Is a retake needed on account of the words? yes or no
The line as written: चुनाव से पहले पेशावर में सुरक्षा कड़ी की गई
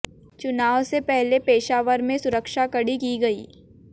no